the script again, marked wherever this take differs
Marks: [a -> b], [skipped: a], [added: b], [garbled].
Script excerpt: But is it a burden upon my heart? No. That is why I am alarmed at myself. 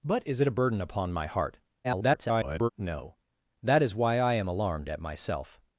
But is it a burden upon my heart? [garbled] No. That is why I am alarmed at myself.